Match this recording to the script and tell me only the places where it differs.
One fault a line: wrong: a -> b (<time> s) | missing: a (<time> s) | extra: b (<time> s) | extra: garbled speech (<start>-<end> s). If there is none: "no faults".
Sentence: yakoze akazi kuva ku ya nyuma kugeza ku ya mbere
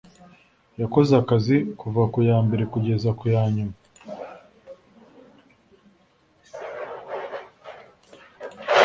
wrong: nyuma -> mbere (2.5 s)
wrong: mbere -> nyuma (3.5 s)